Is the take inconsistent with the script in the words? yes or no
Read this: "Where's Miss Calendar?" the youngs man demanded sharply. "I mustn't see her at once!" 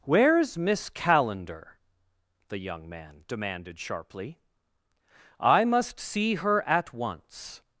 yes